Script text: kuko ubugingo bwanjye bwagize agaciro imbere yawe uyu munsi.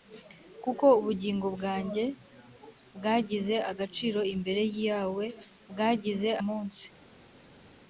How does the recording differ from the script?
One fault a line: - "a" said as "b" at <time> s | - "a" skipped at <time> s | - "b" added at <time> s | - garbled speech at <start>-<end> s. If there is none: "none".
- "uyu" said as "bwagize" at 5.7 s